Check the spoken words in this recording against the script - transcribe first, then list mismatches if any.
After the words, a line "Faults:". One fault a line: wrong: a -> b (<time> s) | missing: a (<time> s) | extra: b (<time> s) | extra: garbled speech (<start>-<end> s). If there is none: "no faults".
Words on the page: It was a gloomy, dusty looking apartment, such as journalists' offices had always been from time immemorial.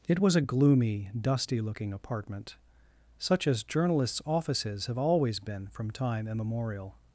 It was a gloomy, dusty looking apartment, such as journalists' offices have always been from time immemorial.
Faults:
wrong: had -> have (4.9 s)